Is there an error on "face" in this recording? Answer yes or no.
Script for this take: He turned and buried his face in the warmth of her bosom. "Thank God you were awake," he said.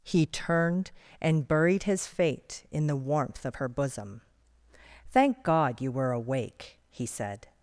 yes